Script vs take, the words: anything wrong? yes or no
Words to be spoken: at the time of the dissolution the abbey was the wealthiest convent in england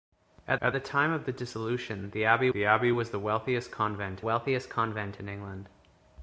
yes